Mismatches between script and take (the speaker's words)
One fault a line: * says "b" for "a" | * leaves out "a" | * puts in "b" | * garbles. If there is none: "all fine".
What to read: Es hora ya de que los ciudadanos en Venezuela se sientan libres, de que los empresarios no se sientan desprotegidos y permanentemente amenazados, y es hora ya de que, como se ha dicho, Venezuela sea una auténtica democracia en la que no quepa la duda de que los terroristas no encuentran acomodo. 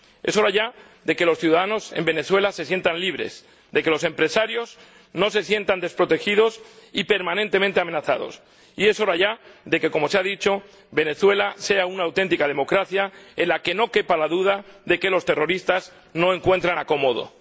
all fine